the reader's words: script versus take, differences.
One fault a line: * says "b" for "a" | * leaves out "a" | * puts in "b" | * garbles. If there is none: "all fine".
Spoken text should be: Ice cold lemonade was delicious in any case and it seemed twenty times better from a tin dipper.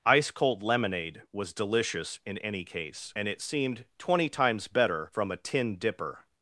all fine